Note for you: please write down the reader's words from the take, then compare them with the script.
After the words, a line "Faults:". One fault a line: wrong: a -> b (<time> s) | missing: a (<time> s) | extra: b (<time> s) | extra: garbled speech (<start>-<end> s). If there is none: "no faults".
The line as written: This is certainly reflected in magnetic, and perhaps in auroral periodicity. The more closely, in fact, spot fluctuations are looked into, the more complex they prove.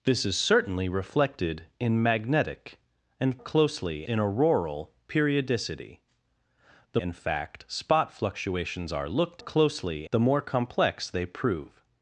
This is certainly reflected in magnetic, and closely in auroral periodicity. The in fact, spot fluctuations are looked closely, the more complex they prove.
Faults:
wrong: perhaps -> closely (3.4 s)
missing: more closely (7.0 s)
wrong: into -> closely (9.4 s)